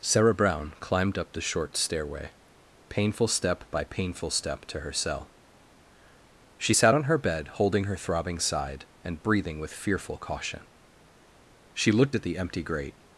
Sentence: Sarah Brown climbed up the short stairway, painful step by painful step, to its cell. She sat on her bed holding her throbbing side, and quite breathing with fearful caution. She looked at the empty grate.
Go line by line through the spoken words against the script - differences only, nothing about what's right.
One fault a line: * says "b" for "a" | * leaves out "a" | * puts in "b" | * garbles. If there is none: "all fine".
* says "her" for "its"
* leaves out "quite"